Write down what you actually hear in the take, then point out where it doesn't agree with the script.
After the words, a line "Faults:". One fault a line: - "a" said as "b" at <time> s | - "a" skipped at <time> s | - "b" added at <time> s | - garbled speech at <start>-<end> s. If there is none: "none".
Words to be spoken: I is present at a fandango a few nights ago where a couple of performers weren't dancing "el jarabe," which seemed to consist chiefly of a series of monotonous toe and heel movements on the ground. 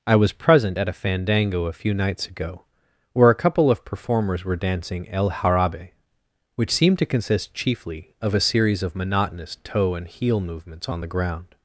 I was present at a fandango a few nights ago where a couple of performers were dancing "el jarabe," which seemed to consist chiefly of a series of monotonous toe and heel movements on the ground.
Faults:
- "is" said as "was" at 0.1 s
- "weren't" said as "were" at 4.4 s